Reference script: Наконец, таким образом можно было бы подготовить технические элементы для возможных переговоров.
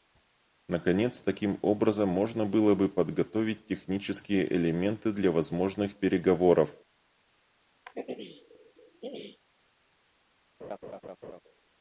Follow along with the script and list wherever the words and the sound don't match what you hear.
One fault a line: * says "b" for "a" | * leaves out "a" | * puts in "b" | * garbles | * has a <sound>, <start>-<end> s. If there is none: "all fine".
* has a throat clearing, 7.9-9.4 s
* has a laugh, 10.6-11.4 s